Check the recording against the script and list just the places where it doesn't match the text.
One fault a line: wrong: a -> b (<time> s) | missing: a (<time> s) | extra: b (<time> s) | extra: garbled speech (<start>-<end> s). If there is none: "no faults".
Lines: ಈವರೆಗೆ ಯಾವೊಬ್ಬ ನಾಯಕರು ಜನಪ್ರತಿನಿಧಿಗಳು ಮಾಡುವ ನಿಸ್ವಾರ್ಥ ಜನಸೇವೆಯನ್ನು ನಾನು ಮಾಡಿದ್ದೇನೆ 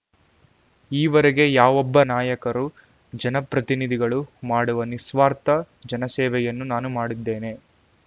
no faults